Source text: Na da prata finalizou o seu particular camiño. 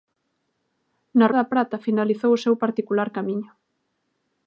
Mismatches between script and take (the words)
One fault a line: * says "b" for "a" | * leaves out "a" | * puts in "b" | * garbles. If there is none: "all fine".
all fine